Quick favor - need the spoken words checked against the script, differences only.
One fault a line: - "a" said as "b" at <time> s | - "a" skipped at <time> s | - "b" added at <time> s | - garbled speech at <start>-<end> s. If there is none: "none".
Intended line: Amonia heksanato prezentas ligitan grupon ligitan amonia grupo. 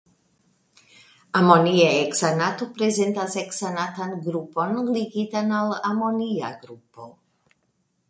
- "ligitan" said as "heksanatan" at 3.4 s
- "al" added at 5.6 s